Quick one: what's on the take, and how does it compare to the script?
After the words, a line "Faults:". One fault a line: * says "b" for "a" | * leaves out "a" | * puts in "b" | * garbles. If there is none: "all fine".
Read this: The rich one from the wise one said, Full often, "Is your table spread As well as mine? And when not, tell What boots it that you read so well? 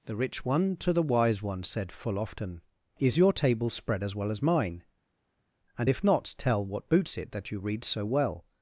The rich one to the wise one said, Full often, "Is your table spread As well as mine? And if not, tell What boots it that you read so well?
Faults:
* says "to" for "from"
* says "if" for "when"